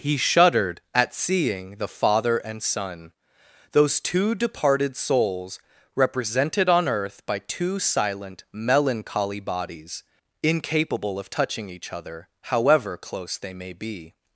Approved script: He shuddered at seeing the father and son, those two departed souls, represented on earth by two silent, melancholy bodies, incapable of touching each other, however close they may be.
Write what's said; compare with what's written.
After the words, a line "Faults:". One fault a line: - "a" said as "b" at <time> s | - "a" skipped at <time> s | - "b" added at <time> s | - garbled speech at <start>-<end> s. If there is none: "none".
He shuddered at seeing the father and son, those two departed souls, represented on earth by two silent, melancholy bodies, incapable of touching each other, however close they may be.
Faults:
none